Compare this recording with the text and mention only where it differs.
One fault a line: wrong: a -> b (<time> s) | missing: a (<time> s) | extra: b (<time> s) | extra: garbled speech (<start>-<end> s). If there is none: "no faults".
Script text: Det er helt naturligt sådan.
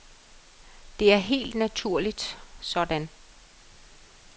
no faults